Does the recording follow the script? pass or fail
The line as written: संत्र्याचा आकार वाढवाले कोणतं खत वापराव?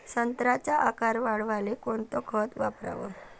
pass